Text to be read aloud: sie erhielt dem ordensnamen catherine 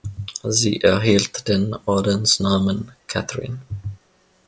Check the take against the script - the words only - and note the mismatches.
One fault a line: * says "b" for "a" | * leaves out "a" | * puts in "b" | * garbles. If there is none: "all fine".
* says "den" for "dem"